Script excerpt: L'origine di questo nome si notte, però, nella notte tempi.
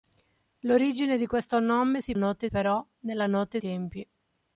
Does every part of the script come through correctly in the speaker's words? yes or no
yes